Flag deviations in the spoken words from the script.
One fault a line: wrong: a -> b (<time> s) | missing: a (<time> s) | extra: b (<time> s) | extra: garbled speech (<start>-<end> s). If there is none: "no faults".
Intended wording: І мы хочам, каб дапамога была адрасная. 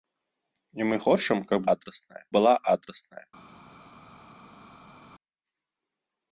wrong: дапамога -> адрасная (1.7 s)